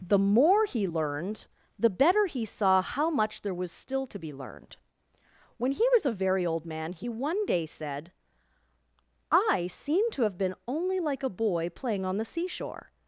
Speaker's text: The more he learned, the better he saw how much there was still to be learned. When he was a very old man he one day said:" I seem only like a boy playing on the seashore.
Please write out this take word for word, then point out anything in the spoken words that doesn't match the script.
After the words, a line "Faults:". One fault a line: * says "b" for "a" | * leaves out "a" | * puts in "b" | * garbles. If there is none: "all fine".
The more he learned, the better he saw how much there was still to be learned. When he was a very old man he one day said:" I seem to have been only like a boy playing on the seashore.
Faults:
* puts in "to have been"